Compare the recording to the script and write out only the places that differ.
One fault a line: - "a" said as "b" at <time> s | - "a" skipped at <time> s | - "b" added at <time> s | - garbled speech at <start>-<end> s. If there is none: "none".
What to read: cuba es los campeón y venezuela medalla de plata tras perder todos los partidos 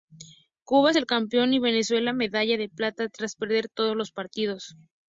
- "los" said as "el" at 0.9 s